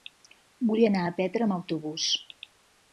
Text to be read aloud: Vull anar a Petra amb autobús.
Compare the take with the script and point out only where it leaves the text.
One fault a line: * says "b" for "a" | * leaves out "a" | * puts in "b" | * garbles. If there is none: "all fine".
all fine